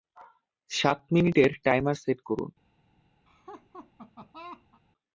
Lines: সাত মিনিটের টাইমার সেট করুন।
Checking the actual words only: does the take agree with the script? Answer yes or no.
yes